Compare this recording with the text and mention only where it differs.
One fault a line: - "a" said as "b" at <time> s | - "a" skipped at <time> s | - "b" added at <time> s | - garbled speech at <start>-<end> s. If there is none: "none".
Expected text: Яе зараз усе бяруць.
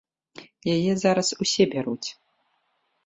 none